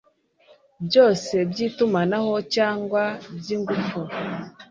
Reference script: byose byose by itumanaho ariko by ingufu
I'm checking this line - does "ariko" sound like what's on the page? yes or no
no